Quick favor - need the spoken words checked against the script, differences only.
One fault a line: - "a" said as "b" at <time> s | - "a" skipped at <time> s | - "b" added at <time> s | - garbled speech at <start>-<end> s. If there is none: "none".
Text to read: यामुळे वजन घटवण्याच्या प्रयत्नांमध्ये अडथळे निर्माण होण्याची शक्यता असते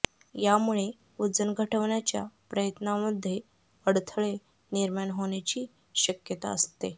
none